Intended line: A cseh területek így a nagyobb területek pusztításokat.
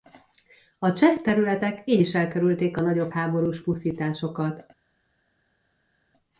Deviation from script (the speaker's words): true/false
true